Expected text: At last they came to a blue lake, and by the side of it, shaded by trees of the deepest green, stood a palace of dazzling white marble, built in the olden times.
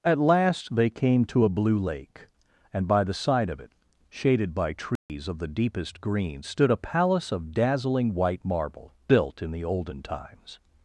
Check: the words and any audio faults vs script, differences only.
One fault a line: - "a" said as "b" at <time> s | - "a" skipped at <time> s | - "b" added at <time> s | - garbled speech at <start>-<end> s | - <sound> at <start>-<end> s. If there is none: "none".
- dropout at 5.0-5.1 s